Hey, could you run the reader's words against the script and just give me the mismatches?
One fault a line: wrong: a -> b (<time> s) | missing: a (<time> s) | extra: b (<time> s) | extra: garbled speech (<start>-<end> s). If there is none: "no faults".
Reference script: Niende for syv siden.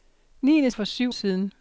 no faults